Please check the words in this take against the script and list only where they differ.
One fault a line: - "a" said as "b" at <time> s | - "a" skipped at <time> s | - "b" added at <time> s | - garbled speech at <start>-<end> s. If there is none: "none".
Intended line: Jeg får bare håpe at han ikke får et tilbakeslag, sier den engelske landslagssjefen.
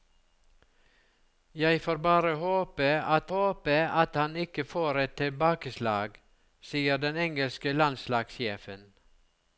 - "håpe at" added at 3.3 s